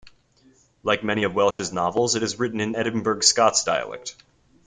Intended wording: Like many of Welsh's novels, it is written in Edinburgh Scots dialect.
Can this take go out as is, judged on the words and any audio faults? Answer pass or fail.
fail